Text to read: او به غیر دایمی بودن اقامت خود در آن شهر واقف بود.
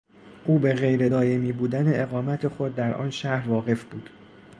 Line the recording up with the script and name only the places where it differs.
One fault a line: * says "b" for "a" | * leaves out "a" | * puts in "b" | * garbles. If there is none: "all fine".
all fine